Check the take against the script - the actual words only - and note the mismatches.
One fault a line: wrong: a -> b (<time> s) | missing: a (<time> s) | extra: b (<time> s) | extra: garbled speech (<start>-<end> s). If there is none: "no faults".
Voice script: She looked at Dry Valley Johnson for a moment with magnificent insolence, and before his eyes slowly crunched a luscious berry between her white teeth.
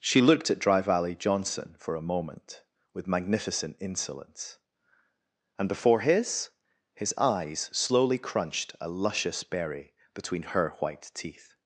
extra: his (7.0 s)